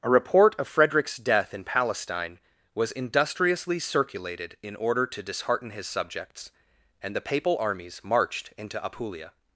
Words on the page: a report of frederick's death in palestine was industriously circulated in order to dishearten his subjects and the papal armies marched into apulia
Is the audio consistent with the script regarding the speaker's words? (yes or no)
yes